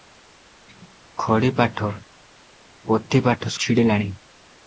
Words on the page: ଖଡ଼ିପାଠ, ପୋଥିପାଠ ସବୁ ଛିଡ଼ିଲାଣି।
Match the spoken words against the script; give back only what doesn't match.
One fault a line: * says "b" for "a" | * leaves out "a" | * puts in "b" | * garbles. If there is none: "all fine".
* leaves out "ସବୁ"